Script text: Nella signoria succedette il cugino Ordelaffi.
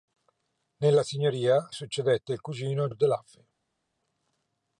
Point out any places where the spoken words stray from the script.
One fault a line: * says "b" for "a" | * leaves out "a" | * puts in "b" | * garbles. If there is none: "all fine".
all fine